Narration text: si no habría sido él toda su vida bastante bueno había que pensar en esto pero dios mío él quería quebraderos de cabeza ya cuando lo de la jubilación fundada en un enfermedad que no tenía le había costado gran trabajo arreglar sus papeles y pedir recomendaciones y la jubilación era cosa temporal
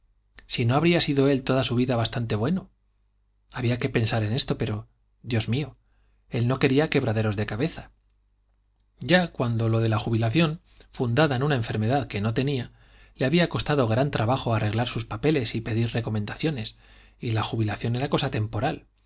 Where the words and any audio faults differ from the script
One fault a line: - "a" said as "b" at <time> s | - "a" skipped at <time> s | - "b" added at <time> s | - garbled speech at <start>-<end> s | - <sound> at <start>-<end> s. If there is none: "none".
- "no" added at 6.5 s
- "un" said as "una" at 11.4 s